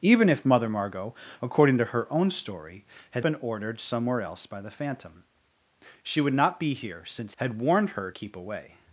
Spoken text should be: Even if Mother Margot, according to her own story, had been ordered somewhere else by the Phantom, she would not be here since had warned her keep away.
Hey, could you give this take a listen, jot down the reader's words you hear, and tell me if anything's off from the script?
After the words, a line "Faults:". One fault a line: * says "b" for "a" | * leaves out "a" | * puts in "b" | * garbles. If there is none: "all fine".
Even if Mother Margot, according to her own story, had been ordered somewhere else by the Phantom, she would not be here since had warned her keep away.
Faults:
all fine